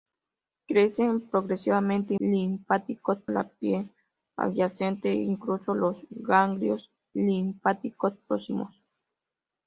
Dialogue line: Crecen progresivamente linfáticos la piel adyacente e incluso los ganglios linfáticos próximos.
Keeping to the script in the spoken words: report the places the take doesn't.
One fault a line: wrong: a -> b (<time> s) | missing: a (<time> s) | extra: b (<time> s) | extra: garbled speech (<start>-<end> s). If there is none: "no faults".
no faults